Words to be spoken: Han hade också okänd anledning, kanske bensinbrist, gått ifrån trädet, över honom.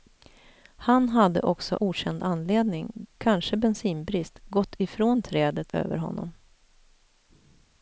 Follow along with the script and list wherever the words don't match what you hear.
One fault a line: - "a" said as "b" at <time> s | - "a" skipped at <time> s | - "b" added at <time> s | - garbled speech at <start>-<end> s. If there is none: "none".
none